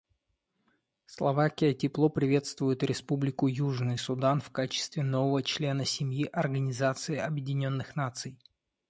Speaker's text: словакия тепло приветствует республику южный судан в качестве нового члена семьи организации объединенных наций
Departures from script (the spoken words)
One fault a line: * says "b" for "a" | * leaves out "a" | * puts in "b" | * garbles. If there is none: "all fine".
all fine